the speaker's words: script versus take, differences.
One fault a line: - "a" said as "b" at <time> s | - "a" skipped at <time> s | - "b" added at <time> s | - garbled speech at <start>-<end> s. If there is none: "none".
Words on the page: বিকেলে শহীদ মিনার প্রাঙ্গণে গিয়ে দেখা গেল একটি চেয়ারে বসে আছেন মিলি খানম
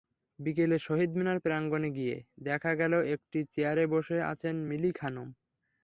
none